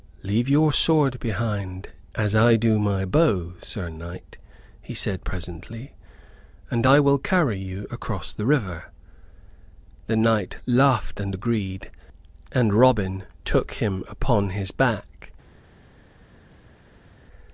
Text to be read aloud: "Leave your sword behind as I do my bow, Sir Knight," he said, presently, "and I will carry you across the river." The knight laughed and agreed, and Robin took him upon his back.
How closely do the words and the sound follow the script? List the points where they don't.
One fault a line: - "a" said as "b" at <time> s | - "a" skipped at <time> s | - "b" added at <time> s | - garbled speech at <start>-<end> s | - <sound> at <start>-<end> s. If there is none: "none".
none